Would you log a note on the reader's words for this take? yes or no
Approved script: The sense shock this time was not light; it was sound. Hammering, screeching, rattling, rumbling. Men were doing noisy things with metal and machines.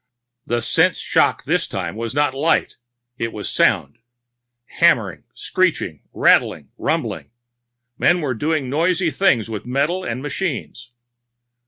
no